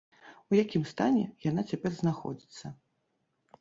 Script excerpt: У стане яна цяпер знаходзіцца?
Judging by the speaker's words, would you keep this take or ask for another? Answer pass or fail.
fail